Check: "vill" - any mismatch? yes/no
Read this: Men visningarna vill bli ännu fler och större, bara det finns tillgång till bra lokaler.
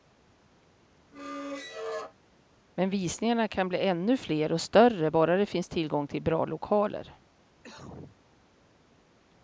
yes